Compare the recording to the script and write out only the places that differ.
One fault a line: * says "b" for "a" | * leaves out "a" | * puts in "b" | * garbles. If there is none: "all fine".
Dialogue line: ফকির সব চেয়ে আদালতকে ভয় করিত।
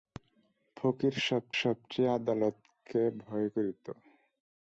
* puts in "সব"